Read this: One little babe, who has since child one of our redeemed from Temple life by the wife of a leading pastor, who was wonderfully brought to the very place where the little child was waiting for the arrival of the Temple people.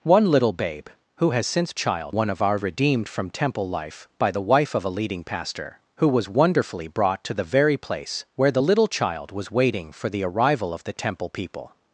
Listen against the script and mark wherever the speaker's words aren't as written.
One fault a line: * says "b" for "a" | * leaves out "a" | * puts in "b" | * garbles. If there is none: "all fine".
all fine